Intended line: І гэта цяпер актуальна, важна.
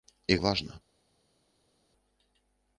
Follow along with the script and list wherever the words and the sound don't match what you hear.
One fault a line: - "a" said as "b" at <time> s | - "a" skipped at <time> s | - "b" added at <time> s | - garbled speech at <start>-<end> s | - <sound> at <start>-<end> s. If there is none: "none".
- "гэта цяпер актуальна" skipped at 0.4 s